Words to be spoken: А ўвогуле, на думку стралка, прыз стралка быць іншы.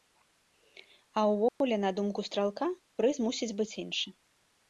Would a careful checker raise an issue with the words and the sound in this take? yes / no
yes